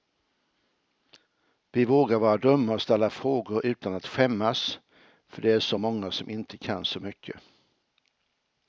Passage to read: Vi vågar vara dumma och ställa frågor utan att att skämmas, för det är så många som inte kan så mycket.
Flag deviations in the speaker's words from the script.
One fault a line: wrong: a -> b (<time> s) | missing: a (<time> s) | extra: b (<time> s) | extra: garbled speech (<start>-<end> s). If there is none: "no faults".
missing: att (4.1 s)